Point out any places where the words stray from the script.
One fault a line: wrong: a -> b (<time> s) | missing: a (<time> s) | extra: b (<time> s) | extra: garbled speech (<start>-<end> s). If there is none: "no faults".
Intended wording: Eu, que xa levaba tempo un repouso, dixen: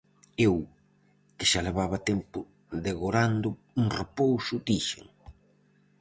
extra: degorando (2.9 s)